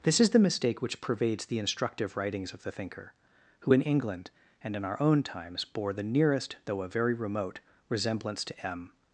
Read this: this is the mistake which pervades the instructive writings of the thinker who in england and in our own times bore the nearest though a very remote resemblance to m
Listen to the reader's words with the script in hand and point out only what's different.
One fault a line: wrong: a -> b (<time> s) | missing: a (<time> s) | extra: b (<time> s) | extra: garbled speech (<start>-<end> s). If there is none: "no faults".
no faults